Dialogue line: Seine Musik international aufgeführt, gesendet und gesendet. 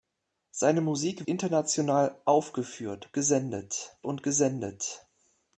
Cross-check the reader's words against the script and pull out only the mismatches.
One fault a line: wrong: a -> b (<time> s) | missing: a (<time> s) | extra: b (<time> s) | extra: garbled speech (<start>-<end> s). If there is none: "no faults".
no faults